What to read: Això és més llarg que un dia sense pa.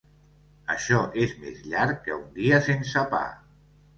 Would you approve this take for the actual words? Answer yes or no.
yes